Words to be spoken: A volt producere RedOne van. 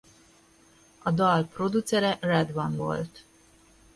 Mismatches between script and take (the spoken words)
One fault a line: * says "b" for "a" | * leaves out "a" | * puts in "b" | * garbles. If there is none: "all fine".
* says "dal" for "volt"
* says "volt" for "van"